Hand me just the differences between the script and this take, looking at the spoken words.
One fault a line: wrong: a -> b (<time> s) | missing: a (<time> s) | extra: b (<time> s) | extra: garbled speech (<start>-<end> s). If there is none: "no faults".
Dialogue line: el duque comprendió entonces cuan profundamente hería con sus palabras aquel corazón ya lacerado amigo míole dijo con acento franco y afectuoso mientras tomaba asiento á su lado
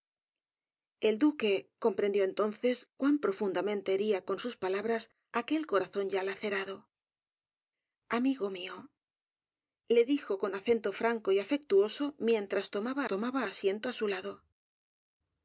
extra: tomaba (13.1 s)